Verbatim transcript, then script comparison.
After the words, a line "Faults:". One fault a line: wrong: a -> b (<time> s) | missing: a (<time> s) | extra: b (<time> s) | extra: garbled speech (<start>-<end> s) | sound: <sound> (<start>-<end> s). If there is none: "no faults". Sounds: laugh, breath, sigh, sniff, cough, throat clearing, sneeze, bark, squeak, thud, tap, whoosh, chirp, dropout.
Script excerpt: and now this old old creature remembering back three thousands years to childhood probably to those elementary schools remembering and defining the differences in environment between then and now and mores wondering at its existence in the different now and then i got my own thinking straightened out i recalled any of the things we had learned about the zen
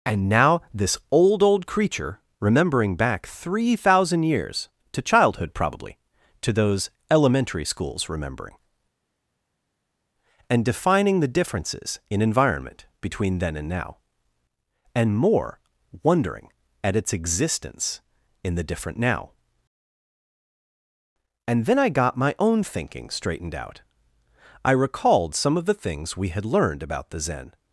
and now this old old creature remembering back three thousand years to childhood probably to those elementary schools remembering and defining the differences in environment between then and now and more wondering at its existence in the different now and then i got my own thinking straightened out i recalled some of the things we had learned about the zen
Faults:
wrong: thousands -> thousand (3.8 s)
wrong: mores -> more (15.2 s)
wrong: any -> some (25.3 s)